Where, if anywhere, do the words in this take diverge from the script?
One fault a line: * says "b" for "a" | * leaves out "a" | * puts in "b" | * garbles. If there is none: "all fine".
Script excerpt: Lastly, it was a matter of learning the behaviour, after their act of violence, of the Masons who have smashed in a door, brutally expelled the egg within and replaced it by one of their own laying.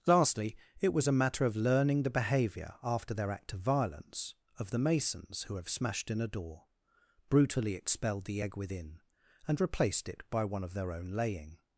all fine